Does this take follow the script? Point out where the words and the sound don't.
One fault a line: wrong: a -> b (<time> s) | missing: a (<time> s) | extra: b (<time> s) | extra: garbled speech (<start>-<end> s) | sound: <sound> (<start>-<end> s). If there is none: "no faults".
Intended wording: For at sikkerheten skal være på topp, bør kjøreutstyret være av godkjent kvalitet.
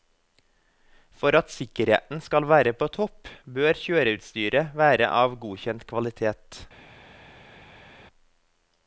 no faults